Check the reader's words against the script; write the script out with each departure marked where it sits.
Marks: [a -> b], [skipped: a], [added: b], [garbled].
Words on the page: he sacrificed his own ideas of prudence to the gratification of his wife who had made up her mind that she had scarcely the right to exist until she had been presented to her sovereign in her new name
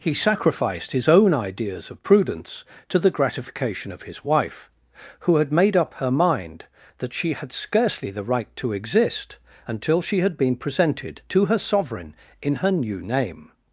he sacrificed his own ideas of prudence to the gratification of his wife who had made up her mind that she had scarcely the right to exist until she had been presented to her sovereign in her new name